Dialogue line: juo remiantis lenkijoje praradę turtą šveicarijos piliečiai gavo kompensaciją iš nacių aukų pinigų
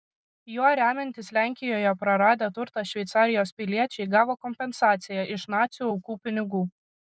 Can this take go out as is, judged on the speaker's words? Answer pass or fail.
pass